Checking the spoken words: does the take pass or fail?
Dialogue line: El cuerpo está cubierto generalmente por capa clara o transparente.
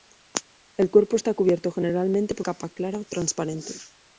pass